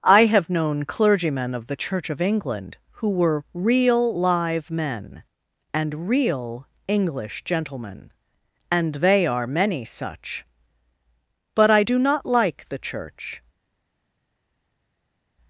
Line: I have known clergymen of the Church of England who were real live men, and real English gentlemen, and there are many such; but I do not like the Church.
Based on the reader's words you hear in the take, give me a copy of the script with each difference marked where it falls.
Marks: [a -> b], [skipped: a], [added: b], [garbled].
I have known clergymen of the Church of England who were real live men, and real English gentlemen, and [there -> they] are many such; but I do not like the Church.